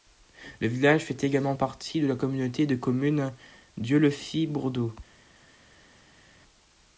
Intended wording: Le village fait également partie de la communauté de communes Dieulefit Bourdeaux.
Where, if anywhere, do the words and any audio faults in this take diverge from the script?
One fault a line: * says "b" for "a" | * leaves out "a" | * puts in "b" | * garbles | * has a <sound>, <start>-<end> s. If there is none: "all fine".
all fine